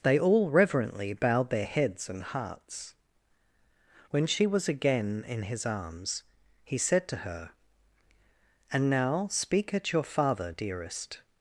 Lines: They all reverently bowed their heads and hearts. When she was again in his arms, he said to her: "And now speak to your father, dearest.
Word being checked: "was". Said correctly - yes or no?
yes